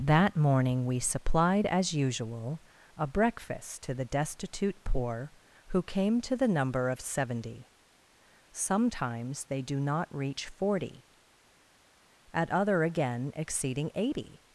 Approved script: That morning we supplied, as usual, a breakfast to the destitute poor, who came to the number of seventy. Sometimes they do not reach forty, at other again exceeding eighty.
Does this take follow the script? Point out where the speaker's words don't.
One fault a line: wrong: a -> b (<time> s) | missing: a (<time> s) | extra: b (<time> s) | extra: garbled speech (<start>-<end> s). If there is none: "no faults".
no faults